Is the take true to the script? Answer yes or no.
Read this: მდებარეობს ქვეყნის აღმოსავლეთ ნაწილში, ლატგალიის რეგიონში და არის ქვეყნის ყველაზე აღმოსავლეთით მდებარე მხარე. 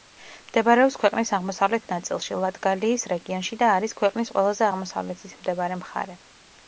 yes